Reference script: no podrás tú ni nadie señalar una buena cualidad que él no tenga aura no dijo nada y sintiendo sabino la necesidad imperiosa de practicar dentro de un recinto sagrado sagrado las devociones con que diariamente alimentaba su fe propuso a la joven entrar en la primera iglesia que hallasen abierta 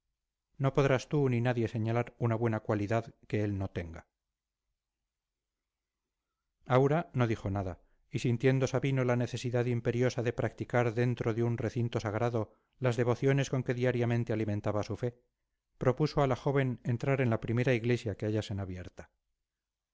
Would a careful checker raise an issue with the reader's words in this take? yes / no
yes